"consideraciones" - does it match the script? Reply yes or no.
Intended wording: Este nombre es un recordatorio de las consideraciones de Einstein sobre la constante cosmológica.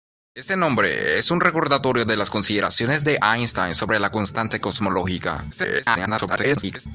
yes